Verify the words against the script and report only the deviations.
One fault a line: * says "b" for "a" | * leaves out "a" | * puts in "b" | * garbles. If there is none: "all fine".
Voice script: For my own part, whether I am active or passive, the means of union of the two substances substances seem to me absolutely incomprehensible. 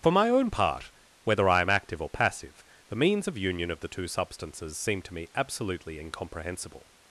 * leaves out "substances"